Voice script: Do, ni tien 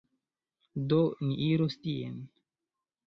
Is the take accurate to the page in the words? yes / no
no